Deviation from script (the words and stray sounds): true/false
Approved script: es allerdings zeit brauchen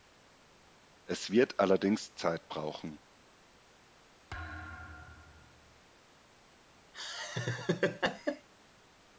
true